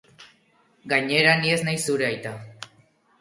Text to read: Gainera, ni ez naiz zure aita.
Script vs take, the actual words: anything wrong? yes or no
no